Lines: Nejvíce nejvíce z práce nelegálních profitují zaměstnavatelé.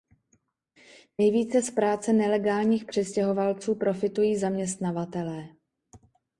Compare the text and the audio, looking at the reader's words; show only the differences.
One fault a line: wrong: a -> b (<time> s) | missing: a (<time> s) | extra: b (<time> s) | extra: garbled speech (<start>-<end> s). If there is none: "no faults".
missing: nejvíce (1.6 s)
extra: přistěhovalců (2.9 s)